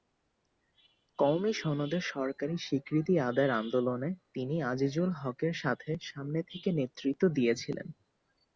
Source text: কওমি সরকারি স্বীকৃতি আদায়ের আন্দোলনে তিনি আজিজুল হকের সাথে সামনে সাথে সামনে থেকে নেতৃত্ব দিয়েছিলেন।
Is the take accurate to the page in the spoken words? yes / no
no